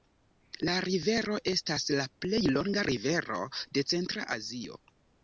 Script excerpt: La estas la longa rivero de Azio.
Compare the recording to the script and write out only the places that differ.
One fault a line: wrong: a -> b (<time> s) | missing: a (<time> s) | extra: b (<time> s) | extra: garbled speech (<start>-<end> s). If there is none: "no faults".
extra: rivero (0.8 s)
extra: plej (2.2 s)
extra: Centra (3.9 s)